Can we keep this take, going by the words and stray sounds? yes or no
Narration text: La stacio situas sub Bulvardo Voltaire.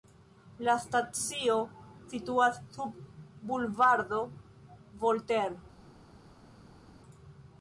yes